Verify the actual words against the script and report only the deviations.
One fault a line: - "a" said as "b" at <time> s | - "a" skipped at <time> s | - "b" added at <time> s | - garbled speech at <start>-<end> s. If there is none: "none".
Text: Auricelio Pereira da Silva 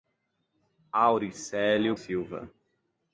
- "Pereira da" skipped at 2.0 s